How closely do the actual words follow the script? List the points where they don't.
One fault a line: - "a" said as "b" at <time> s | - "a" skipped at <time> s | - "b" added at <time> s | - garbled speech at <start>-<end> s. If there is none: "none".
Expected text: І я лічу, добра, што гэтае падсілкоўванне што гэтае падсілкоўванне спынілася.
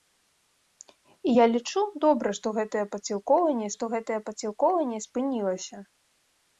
none